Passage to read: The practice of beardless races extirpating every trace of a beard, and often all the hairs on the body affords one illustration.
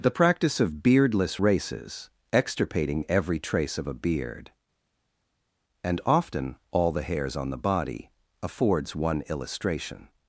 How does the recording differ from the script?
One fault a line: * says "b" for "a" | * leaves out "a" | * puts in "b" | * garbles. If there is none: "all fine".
all fine